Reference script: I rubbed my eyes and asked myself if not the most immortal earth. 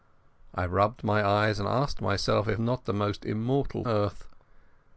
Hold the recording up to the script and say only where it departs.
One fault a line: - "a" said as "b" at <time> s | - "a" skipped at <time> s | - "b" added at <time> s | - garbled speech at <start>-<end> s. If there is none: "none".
none